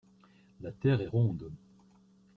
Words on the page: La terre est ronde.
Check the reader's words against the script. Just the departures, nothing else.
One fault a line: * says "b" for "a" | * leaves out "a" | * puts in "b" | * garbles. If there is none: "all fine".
all fine